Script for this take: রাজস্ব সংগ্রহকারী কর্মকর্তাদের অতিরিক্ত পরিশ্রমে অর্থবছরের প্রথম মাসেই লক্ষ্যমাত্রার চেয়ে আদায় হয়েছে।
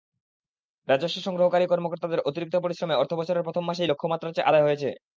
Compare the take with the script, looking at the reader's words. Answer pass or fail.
pass